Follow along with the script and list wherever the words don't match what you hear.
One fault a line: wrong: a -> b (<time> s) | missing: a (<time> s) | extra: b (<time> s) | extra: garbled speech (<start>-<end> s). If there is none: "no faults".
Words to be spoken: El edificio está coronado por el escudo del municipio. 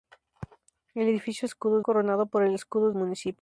wrong: está -> escudo (1.4 s)
missing: del (2.9 s)